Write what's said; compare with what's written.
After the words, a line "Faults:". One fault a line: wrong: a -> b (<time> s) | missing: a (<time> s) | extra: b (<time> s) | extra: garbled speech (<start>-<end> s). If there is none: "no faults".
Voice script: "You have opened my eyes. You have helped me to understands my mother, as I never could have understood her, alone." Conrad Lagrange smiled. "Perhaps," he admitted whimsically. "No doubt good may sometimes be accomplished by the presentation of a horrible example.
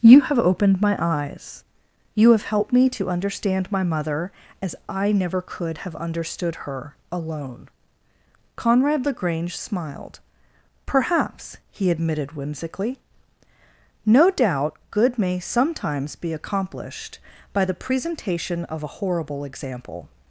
"You have opened my eyes. You have helped me to understand my mother, as I never could have understood her, alone." Conrad Lagrange smiled. "Perhaps," he admitted whimsically. "No doubt good may sometimes be accomplished by the presentation of a horrible example.
Faults:
wrong: understands -> understand (3.1 s)